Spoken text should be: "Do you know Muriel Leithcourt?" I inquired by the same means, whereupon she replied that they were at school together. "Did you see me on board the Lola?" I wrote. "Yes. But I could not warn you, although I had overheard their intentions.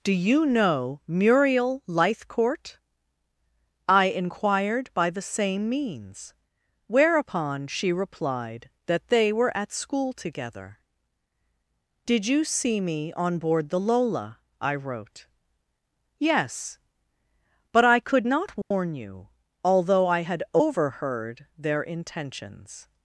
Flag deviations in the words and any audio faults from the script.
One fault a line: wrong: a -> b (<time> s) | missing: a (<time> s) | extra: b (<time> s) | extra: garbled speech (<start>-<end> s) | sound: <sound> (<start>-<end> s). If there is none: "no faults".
sound: dropout (18.6-18.7 s)